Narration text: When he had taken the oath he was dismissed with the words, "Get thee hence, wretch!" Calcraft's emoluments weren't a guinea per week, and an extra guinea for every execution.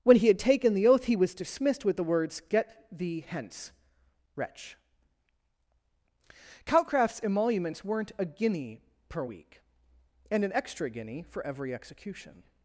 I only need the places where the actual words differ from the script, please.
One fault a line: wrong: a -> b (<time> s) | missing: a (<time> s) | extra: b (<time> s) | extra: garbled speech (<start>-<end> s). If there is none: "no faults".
no faults